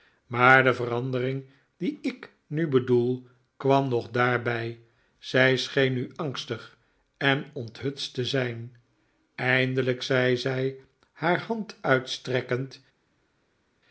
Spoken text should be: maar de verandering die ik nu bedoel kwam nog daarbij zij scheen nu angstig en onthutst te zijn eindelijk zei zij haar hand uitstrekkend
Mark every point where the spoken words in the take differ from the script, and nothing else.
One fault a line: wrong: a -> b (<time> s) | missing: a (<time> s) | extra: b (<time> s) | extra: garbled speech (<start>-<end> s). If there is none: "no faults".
no faults